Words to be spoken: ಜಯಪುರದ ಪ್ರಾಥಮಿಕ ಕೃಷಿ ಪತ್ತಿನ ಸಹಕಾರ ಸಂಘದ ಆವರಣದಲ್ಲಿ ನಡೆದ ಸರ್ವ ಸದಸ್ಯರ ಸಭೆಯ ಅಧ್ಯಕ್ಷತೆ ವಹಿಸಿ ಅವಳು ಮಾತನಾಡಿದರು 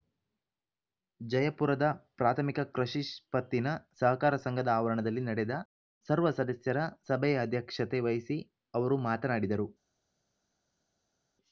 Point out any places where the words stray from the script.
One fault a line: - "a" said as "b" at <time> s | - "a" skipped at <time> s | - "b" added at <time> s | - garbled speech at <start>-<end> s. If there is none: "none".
- "ಅವಳು" said as "ಅವರು" at 8.7 s